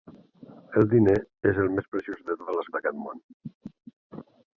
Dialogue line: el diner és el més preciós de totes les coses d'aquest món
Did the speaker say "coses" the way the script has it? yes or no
no